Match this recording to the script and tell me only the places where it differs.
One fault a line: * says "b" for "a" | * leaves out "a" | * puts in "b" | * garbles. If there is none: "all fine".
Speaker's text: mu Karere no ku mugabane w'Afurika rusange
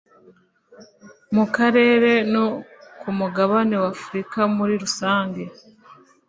* puts in "muri"